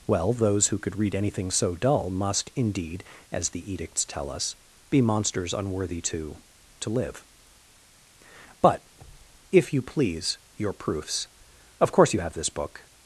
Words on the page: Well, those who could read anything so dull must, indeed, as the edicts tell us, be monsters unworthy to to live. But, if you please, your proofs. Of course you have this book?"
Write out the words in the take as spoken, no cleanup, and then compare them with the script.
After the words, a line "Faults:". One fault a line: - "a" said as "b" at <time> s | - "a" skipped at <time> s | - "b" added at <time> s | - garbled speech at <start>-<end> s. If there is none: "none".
Well, those who could read anything so dull must, indeed, as the edicts tell us, be monsters unworthy to to live. But, if you please, your proofs. Of course you have this book?"
Faults:
none